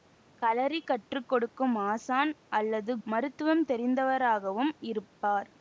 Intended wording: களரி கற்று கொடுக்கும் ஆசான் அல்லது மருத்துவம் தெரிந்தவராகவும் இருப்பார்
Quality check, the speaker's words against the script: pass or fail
pass